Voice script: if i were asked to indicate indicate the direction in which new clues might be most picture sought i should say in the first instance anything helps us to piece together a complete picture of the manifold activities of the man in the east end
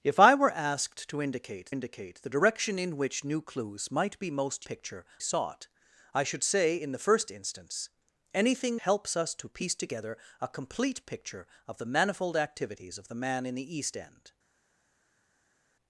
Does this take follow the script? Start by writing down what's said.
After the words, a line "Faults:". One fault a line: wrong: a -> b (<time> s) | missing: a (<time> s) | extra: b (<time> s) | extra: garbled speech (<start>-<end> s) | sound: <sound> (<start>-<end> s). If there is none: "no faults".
if i were asked to indicate indicate the direction in which new clues might be most picture sought i should say in the first instance anything helps us to piece together a complete picture of the manifold activities of the man in the east end
Faults:
no faults